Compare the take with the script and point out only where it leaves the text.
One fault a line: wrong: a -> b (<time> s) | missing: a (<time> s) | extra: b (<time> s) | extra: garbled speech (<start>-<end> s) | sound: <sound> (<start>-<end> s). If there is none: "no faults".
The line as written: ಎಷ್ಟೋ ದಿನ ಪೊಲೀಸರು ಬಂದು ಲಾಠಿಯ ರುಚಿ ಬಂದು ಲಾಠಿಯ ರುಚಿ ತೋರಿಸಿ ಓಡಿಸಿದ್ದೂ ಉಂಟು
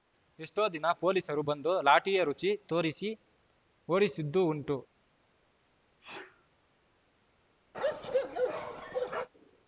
missing: ಬಂದು ಲಾಠಿಯ ರುಚಿ (2.5 s)
sound: sneeze (6.0-6.5 s)
sound: bark (7.7-9.3 s)